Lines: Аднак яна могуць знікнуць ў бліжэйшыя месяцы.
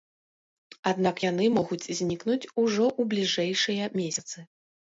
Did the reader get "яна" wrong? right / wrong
wrong